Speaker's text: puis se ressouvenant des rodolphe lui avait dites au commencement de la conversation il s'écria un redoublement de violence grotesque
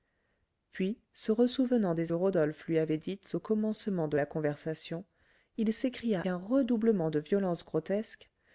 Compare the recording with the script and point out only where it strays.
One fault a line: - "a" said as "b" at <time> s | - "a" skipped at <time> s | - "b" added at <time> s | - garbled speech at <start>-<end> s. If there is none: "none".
none